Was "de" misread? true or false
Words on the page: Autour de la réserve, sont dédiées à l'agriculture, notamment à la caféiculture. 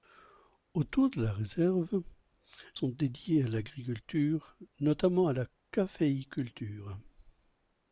false